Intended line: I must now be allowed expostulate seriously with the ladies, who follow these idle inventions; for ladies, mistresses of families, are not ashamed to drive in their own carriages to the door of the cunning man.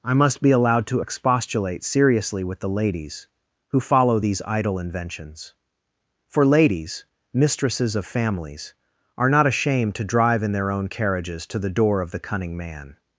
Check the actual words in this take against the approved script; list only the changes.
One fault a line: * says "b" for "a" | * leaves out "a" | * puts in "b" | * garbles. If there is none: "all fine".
* leaves out "now"
* puts in "to"